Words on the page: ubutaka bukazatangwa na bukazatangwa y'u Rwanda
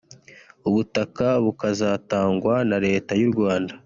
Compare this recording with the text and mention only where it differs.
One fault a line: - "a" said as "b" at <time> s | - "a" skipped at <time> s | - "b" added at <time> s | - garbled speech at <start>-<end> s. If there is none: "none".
- "bukazatangwa" said as "leta" at 2.9 s